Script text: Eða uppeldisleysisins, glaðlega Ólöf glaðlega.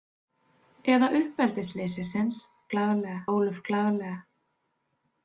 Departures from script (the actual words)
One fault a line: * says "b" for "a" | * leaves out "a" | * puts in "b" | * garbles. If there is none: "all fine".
all fine